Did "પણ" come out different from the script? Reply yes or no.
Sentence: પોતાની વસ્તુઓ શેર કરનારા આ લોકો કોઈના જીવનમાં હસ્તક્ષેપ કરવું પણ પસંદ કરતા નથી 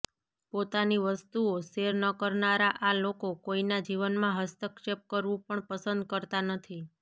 no